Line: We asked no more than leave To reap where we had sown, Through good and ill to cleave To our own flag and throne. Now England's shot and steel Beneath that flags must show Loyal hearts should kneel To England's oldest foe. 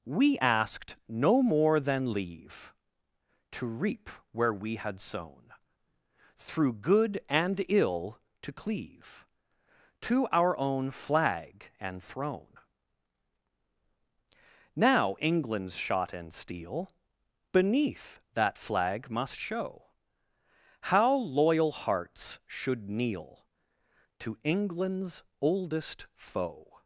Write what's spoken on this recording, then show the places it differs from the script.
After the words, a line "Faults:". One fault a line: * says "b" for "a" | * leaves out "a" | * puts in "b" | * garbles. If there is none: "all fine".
We asked no more than leave To reap where we had sown, Through good and ill to cleave To our own flag and throne. Now England's shot and steel Beneath that flag must show How loyal hearts should kneel To England's oldest foe.
Faults:
* says "flag" for "flags"
* puts in "How"